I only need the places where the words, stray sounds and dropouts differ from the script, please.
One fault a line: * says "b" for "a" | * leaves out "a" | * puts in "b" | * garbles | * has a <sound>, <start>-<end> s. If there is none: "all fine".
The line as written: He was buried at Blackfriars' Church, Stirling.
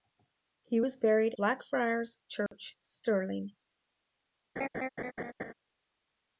* leaves out "at"
* has a dropout, 2.5-2.5 s
* has a laugh, 4.6-5.5 s